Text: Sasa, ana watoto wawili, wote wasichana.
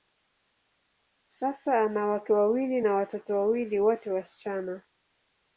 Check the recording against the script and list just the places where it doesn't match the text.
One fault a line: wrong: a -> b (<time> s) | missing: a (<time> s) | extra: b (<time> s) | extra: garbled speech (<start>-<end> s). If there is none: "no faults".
extra: wake wawili na (2.1 s)